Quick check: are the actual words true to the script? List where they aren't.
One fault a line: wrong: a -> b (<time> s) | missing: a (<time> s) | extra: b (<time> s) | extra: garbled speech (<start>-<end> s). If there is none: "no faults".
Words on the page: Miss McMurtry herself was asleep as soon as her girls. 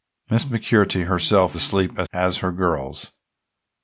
missing: was (1.6 s)
missing: soon (2.1 s)